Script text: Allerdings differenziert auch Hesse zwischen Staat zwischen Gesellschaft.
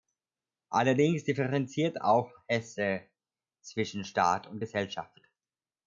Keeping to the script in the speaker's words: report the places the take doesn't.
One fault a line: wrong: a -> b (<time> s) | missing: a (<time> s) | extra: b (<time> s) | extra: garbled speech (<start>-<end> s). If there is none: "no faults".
wrong: zwischen -> und (4.5 s)